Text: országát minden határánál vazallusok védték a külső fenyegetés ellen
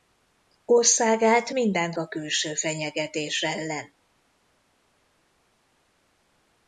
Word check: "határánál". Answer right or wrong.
wrong